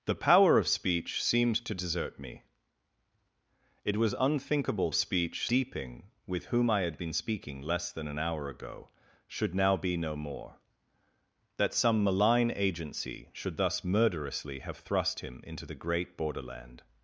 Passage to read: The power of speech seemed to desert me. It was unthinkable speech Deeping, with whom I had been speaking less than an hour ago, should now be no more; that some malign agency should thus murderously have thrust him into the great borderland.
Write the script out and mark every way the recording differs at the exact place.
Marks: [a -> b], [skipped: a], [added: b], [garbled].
The power of speech seemed to desert me. It was unthinkable speech Deeping, with whom I had been speaking less than an hour ago, should now be no more; that some malign agency should thus murderously have thrust him into the great borderland.